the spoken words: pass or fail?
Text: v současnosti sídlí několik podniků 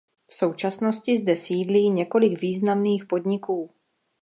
fail